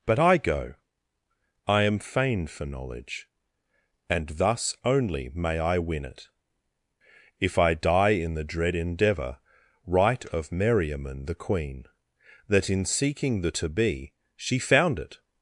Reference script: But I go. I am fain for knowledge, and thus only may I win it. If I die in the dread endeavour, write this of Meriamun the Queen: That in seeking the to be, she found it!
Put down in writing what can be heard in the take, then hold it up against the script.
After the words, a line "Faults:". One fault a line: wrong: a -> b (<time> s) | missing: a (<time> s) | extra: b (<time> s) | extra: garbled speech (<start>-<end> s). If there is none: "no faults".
But I go. I am fain for knowledge, and thus only may I win it. If I die in the dread endeavour, write of Meriamun the Queen: That in seeking the to be, she found it!
Faults:
missing: this (10.3 s)